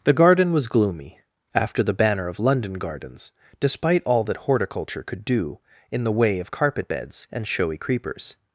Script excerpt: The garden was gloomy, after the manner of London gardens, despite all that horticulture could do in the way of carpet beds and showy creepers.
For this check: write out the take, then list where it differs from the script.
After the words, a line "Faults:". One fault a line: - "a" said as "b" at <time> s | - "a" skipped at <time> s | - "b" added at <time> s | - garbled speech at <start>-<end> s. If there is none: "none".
The garden was gloomy, after the banner of London gardens, despite all that horticulture could do in the way of carpet beds and showy creepers.
Faults:
- "manner" said as "banner" at 1.9 s